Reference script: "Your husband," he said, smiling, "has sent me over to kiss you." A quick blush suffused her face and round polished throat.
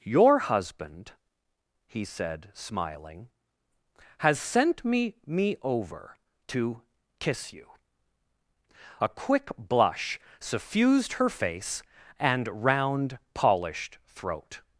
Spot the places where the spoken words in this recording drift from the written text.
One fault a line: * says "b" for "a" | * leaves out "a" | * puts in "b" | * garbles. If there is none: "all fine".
* puts in "me"